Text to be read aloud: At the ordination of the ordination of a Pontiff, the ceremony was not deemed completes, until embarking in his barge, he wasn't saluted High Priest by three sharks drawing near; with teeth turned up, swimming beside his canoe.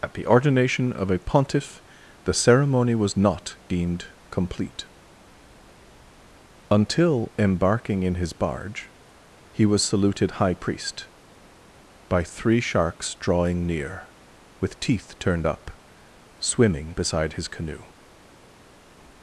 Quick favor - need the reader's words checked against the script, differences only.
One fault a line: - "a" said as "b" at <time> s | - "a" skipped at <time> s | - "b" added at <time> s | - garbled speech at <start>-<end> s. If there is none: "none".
- "the ordination of" skipped at 1.1 s
- "completes" said as "complete" at 4.3 s
- "wasn't" said as "was" at 9.7 s